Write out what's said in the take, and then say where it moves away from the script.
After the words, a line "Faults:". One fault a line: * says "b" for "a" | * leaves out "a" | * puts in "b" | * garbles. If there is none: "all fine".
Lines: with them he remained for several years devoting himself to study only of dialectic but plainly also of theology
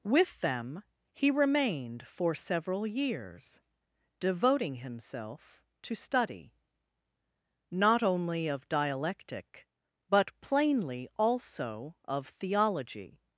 with them he remained for several years devoting himself to study not only of dialectic but plainly also of theology
Faults:
* puts in "not"